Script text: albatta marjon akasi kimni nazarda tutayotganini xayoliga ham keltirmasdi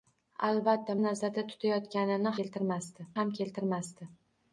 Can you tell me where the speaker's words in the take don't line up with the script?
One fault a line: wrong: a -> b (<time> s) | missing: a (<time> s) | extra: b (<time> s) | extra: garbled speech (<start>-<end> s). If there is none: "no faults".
missing: marjon akasi kimni (0.9 s)
wrong: xayoliga -> keltirmasdi (2.4 s)